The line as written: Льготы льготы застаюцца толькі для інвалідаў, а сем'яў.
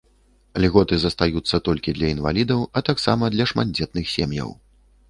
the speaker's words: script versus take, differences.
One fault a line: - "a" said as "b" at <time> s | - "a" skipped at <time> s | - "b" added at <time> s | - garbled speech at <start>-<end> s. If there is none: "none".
- "льготы" skipped at 1.0 s
- "таксама для шматдзетных" added at 2.9 s